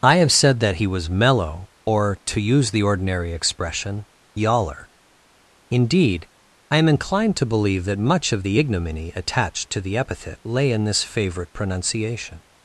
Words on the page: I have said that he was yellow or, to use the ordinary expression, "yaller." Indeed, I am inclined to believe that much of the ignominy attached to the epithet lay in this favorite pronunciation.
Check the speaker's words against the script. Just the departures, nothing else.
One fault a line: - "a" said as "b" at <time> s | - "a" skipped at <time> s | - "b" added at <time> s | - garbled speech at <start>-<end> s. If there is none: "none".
- "yellow" said as "mellow" at 1.1 s